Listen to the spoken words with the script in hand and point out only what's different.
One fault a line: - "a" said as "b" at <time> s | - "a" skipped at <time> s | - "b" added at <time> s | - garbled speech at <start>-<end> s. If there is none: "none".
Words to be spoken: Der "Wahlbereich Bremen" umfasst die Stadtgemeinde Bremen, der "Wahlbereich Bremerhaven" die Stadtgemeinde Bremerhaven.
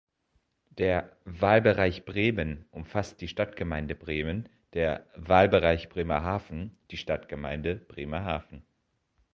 none